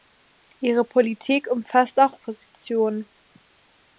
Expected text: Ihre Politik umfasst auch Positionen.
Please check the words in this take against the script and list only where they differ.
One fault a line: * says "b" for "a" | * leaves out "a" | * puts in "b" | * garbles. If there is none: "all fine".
all fine